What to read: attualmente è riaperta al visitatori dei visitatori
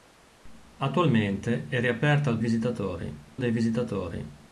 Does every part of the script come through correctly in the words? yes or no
yes